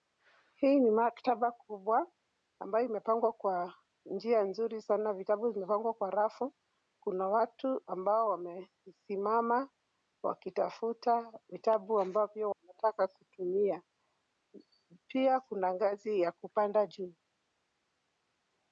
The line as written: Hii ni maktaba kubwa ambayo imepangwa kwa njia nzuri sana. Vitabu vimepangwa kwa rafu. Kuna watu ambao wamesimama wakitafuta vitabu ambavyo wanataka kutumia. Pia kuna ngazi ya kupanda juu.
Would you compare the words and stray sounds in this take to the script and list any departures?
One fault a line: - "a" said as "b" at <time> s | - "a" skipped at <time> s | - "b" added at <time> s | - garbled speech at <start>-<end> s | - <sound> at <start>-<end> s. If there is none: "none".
none